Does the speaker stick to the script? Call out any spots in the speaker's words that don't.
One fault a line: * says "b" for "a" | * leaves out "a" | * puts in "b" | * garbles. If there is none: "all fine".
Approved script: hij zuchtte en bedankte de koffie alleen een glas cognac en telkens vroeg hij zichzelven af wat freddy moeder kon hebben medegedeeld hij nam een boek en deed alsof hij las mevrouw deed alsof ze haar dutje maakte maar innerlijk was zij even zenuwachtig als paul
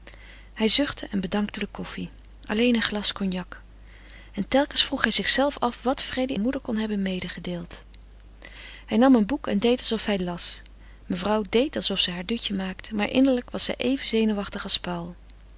all fine